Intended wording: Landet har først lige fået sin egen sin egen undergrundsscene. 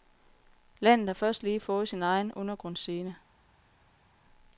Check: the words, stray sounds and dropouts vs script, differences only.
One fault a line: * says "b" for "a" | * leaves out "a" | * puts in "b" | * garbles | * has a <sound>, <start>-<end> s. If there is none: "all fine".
* leaves out "sin egen"